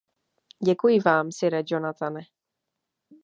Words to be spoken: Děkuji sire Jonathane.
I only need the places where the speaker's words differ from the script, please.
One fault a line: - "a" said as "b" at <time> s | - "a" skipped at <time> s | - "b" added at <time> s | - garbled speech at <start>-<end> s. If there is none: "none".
- "vám" added at 1.0 s